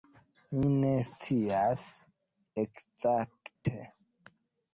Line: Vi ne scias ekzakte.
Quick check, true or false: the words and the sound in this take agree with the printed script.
false